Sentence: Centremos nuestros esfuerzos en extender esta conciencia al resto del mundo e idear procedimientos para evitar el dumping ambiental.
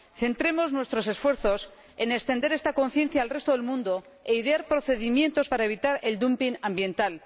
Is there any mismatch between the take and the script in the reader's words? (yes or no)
no